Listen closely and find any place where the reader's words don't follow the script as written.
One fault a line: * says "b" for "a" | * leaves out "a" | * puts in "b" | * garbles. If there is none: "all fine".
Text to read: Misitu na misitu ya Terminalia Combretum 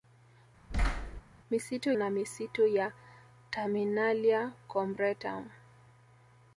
all fine